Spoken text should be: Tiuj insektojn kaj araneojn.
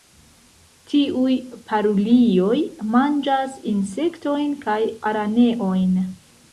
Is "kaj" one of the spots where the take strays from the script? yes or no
no